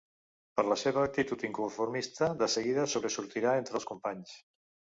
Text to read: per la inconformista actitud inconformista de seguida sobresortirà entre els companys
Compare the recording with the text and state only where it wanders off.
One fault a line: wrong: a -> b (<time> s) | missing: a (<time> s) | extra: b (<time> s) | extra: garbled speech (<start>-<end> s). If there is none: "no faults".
wrong: inconformista -> seva (0.8 s)